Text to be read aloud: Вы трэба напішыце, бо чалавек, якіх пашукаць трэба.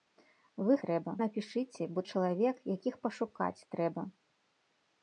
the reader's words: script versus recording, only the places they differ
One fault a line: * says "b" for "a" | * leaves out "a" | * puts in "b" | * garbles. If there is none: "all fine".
all fine